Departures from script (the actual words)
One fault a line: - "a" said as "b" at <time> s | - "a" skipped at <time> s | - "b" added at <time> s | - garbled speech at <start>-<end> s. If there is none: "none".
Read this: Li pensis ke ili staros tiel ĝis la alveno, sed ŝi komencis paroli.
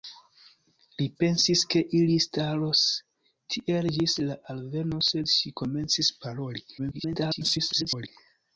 - garbled speech at 6.8-8.1 s